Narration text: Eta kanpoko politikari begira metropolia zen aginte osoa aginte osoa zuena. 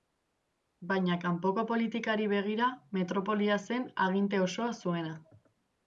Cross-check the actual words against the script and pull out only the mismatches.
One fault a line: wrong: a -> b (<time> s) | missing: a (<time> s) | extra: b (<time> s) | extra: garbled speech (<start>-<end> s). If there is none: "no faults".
wrong: Eta -> Baina (0.9 s)
missing: aginte osoa (4.7 s)